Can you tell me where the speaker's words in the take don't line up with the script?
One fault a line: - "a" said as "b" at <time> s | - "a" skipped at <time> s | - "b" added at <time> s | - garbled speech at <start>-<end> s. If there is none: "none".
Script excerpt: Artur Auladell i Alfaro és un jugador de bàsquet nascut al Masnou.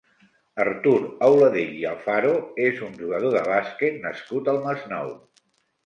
none